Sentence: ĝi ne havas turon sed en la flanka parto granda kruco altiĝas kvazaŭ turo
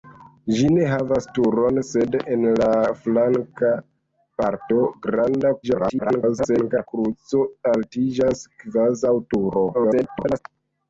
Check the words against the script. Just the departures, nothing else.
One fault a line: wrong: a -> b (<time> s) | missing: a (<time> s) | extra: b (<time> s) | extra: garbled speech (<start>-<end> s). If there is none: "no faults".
extra: garbled speech (5.6-6.9 s)
extra: garbled speech (9.7-10.4 s)